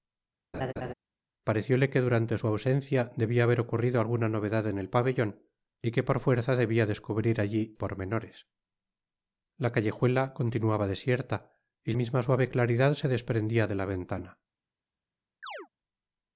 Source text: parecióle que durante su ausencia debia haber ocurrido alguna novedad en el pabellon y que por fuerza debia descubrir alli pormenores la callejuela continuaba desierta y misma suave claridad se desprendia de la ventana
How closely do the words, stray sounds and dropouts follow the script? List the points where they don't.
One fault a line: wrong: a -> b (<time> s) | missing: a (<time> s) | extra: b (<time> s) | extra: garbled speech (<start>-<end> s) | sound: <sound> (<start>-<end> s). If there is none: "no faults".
sound: laugh (0.5-0.9 s)
sound: chirp (15.4-15.7 s)